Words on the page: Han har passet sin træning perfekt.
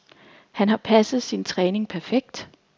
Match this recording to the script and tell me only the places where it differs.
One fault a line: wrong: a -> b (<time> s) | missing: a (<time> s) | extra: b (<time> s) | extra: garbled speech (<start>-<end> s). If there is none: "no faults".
no faults